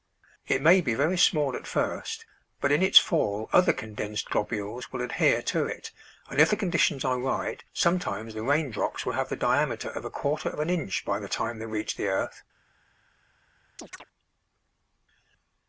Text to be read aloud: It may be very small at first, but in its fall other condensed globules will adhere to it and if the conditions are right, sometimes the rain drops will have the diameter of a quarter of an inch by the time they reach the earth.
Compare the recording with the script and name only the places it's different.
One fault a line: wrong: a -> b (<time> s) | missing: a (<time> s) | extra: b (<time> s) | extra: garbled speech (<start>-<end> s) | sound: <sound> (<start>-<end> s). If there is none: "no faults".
sound: chirp (13.8-14.0 s)